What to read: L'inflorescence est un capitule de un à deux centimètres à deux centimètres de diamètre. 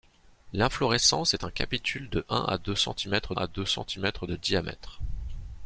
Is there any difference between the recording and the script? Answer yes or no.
no